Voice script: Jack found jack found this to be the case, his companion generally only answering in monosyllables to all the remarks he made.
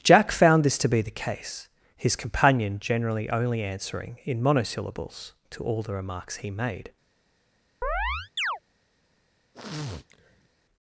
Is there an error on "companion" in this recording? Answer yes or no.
no